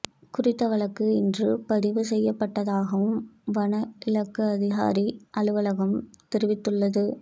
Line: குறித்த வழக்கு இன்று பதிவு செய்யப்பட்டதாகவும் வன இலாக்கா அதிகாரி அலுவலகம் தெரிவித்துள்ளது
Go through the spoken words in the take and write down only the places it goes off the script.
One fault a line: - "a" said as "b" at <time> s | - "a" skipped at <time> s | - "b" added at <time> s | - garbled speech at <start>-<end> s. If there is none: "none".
none